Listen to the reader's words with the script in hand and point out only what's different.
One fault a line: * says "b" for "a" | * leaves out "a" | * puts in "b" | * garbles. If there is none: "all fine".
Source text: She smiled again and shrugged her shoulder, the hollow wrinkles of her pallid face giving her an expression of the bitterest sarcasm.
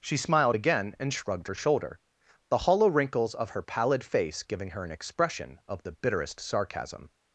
all fine